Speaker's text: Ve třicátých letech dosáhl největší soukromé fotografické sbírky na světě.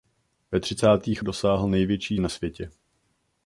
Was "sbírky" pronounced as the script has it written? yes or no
no